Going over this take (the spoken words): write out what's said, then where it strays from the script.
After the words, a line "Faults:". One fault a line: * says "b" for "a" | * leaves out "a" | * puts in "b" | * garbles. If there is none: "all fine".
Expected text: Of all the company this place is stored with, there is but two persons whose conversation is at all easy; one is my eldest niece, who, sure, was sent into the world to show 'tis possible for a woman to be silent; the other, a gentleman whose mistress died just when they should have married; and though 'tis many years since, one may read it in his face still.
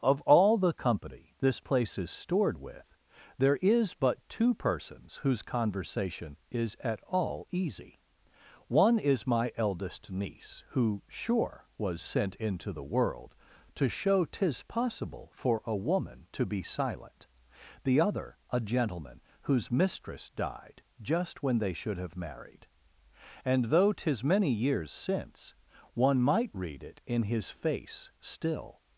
Of all the company this place is stored with, there is but two persons whose conversation is at all easy; one is my eldest niece, who, sure, was sent into the world to show 'tis possible for a woman to be silent; the other, a gentleman whose mistress died just when they should have married; and though 'tis many years since, one might read it in his face still.
Faults:
* says "might" for "may"